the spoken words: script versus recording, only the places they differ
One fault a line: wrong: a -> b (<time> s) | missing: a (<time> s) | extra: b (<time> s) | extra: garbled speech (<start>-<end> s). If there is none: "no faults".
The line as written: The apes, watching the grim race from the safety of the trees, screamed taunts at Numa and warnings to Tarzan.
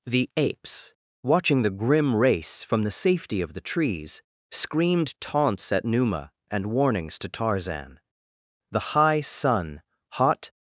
extra: The high sun hot (8.7 s)